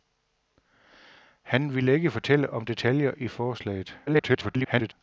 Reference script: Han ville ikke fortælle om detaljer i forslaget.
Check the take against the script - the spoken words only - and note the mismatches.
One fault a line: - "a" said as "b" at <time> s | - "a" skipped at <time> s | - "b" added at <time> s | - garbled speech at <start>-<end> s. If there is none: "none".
- garbled speech at 4.1-4.9 s